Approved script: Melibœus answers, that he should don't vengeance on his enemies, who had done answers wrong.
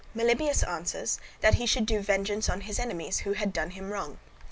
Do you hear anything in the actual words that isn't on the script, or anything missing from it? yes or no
yes